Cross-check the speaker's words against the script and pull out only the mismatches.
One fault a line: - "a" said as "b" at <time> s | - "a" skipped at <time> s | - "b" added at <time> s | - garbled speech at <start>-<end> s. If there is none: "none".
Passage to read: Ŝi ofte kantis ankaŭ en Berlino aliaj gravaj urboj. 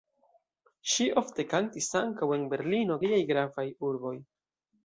none